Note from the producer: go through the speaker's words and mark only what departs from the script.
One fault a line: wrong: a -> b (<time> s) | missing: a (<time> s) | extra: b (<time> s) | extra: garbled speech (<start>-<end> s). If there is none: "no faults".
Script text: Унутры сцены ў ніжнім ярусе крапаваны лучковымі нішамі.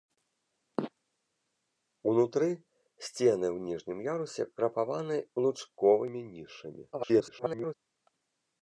extra: garbled speech (6.9-7.7 s)